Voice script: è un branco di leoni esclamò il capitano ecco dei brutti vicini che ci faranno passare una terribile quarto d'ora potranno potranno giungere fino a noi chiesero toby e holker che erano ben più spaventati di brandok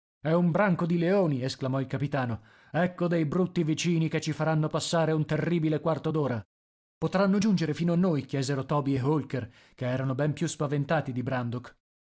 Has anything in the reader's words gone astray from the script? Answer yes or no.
yes